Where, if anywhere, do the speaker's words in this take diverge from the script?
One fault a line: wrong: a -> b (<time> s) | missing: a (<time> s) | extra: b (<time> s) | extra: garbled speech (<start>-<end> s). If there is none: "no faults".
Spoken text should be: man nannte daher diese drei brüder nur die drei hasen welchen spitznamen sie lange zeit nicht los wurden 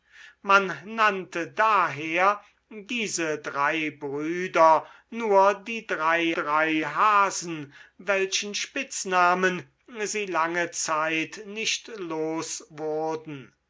extra: drei (6.3 s)